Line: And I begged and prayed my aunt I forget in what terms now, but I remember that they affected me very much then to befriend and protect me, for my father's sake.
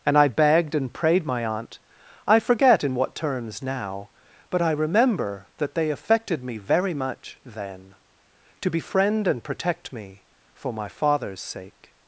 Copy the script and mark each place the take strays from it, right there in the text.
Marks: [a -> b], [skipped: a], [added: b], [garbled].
And I begged and prayed my aunt I forget in what terms now, but I remember that they affected me very much then to befriend and protect me, for my father's sake.